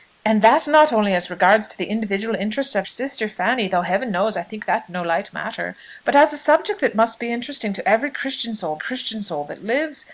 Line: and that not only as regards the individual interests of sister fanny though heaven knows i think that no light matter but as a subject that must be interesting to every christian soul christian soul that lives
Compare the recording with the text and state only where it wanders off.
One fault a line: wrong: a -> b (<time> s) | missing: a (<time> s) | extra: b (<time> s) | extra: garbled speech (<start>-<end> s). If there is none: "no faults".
no faults